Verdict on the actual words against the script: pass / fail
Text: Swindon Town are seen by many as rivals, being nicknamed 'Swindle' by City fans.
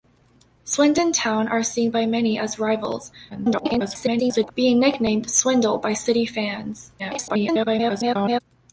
fail